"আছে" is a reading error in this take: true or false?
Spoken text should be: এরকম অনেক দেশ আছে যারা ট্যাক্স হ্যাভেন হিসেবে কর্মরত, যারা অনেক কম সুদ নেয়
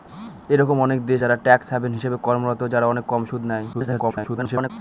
true